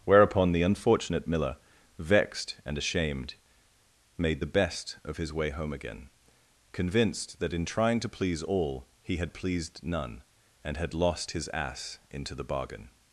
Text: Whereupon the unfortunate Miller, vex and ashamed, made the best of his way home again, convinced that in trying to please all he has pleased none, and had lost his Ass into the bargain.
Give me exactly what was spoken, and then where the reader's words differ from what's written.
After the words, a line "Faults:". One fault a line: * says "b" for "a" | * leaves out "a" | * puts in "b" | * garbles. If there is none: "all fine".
Whereupon the unfortunate Miller, vexed and ashamed, made the best of his way home again, convinced that in trying to please all he had pleased none, and had lost his Ass into the bargain.
Faults:
* says "vexed" for "vex"
* says "had" for "has"